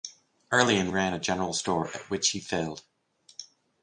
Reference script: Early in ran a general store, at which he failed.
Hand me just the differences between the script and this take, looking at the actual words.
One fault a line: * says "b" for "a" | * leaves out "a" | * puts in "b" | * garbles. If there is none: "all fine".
all fine